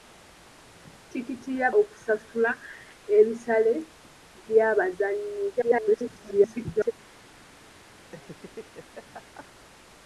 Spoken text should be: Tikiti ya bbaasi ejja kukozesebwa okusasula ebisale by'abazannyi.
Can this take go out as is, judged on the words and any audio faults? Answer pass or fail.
fail